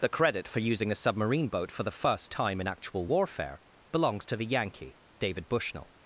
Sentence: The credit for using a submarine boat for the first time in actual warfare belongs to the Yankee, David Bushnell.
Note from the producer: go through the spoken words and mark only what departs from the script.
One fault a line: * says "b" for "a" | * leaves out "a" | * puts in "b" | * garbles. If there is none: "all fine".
all fine